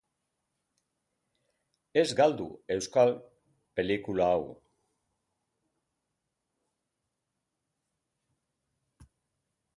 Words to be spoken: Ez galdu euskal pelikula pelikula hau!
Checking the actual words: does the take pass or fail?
fail